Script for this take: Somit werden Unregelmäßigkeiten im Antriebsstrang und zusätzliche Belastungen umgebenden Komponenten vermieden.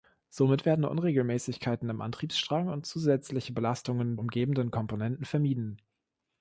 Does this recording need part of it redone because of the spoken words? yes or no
no